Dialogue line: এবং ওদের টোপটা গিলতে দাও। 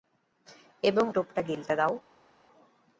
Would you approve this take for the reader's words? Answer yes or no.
no